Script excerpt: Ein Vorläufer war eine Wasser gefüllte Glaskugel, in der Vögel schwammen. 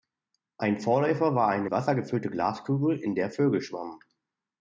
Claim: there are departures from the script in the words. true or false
false